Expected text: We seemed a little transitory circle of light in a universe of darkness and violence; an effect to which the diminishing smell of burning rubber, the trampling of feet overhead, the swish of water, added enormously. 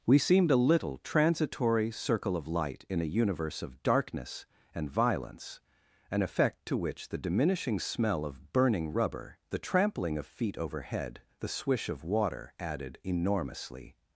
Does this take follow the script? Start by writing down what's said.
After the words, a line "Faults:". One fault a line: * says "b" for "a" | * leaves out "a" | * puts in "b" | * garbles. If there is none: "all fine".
We seemed a little transitory circle of light in a universe of darkness and violence; an effect to which the diminishing smell of burning rubber, the trampling of feet overhead, the swish of water, added enormously.
Faults:
all fine